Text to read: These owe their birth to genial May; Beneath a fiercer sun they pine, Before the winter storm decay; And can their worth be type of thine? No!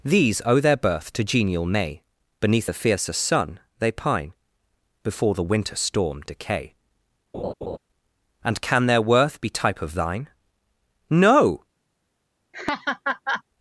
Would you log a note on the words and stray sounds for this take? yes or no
yes